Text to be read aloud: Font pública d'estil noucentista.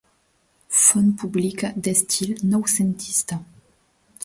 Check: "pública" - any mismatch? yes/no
no